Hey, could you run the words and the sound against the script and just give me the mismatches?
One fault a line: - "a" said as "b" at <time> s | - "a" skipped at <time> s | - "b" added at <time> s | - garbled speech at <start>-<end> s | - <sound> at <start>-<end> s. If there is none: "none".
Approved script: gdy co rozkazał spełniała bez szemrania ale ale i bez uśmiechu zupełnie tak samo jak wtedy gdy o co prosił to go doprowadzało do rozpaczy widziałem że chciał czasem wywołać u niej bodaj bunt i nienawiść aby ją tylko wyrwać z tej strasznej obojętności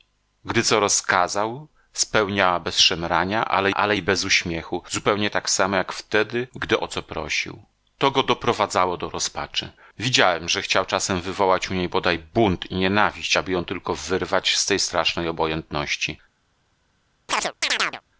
- chirp at 17.3-18.0 s